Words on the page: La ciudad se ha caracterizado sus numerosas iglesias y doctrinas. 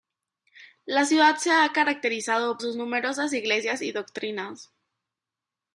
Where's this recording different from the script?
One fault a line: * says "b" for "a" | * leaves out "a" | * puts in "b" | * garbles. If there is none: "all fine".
all fine